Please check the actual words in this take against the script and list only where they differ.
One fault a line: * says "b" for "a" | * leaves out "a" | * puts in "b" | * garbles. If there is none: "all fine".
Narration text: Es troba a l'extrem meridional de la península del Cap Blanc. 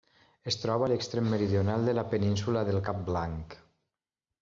all fine